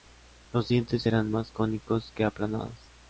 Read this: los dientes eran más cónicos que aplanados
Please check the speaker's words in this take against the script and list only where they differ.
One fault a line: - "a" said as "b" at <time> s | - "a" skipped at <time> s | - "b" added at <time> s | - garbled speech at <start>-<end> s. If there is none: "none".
none